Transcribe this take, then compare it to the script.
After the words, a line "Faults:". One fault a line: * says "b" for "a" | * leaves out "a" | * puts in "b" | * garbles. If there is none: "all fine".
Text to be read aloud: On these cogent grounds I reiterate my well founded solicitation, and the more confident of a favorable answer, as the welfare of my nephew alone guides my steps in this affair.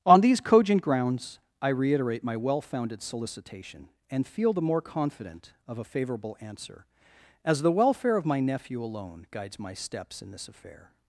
On these cogent grounds I reiterate my well founded solicitation, and feel the more confident of a favorable answer, as the welfare of my nephew alone guides my steps in this affair.
Faults:
* puts in "feel"